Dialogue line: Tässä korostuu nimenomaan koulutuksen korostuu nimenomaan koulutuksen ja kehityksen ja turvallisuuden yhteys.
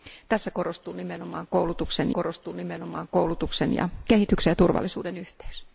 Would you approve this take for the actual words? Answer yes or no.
yes